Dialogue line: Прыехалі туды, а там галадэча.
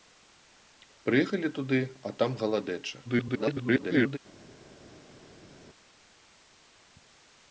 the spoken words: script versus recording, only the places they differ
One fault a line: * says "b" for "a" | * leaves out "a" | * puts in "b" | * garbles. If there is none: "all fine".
* garbles